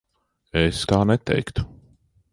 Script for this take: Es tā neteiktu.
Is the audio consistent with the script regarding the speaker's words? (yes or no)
yes